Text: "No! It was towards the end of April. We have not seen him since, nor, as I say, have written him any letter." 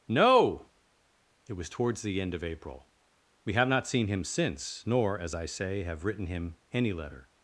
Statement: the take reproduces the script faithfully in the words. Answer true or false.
true